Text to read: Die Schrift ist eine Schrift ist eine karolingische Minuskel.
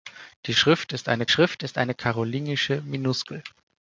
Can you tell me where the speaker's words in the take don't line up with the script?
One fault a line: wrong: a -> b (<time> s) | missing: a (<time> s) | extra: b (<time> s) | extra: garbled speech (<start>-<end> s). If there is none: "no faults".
no faults